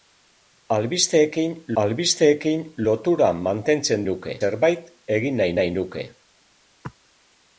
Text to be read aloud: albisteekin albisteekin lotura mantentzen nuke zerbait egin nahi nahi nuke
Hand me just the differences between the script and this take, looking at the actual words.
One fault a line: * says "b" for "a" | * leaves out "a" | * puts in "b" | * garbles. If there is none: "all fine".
all fine